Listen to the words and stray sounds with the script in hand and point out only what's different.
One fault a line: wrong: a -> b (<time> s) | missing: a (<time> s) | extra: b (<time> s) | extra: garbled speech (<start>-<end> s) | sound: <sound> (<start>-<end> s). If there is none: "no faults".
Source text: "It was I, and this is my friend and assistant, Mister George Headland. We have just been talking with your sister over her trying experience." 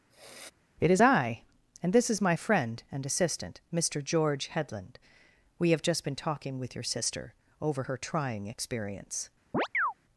sound: sniff (0.1-0.5 s)
wrong: was -> is (0.9 s)
sound: chirp (9.5-9.9 s)